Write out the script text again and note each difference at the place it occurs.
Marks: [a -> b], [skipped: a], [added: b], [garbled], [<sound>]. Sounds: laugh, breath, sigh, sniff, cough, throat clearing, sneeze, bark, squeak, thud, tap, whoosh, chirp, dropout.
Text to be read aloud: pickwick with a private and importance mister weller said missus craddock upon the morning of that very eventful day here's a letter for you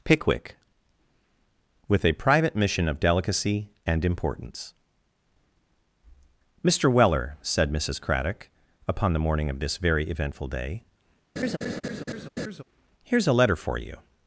pickwick with a private [added: mission of delicacy] and importance mister weller said missus craddock upon the morning of [that -> this] very eventful day [laugh] here's a letter for you